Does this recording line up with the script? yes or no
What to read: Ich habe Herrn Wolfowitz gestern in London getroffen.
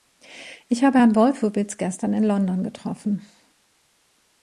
yes